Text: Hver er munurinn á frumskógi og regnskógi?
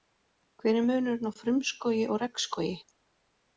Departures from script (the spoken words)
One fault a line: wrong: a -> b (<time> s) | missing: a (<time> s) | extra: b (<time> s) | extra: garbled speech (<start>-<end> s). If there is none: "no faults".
no faults